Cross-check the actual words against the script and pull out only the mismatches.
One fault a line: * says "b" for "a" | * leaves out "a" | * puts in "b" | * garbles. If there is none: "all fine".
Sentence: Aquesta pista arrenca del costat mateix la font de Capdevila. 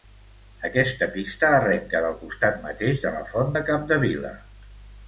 * puts in "de"